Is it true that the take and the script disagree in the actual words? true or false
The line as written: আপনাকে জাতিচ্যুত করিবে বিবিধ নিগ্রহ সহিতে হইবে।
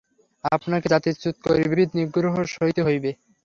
false